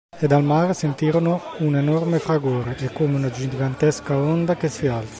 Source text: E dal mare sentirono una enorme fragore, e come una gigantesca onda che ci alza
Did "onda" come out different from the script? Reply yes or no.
no